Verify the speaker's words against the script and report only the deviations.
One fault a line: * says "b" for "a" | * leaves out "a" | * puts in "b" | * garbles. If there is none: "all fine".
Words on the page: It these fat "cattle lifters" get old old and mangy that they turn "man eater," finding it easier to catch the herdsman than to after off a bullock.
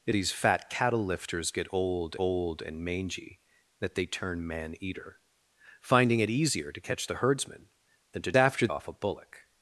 all fine